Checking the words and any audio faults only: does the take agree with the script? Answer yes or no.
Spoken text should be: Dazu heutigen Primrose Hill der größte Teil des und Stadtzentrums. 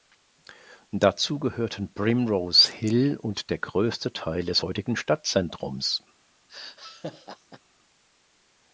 no